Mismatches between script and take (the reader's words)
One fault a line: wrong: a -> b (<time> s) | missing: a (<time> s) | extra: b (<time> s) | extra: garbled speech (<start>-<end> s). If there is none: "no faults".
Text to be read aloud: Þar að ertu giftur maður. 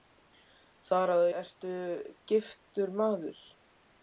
no faults